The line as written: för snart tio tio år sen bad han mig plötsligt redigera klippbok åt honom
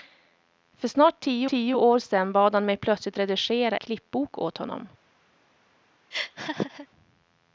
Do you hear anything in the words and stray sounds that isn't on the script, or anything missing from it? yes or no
yes